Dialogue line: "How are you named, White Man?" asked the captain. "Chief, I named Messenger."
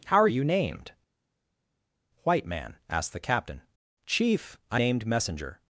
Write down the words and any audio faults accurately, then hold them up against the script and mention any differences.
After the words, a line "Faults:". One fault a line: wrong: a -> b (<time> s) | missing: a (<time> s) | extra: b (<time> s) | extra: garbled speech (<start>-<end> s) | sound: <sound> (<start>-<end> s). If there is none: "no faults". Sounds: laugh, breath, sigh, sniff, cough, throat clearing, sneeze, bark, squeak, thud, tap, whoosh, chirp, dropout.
"How are you named, White Man?" asked the captain. "Chief, I named Messenger."
Faults:
no faults